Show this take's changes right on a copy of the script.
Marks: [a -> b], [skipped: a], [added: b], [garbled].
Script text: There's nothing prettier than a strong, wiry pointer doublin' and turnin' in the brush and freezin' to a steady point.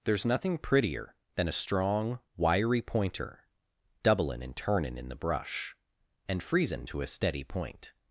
There's nothing prettier than a strong, wiry pointer doublin' and turnin' in the brush and freezin' to a steady point.